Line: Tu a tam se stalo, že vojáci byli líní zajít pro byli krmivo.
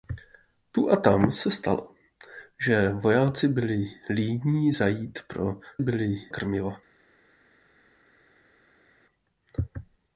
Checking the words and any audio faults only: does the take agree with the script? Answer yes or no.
yes